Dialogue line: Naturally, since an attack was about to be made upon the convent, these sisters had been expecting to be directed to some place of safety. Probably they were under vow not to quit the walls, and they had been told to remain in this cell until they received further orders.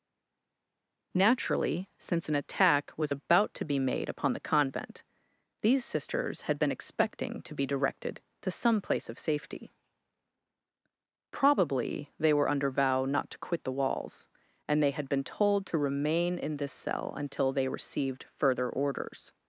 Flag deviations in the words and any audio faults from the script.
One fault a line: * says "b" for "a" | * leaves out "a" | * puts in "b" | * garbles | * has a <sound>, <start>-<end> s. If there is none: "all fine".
all fine